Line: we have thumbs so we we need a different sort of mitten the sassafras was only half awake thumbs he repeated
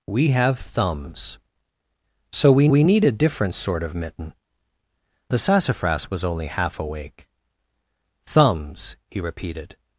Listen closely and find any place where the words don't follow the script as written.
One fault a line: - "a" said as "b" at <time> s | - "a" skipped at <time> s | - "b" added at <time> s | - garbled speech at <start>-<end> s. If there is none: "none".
none